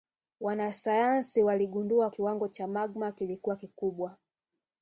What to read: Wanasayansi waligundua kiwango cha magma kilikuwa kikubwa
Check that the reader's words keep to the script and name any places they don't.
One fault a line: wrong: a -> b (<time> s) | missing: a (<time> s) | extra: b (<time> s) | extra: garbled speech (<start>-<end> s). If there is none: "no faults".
no faults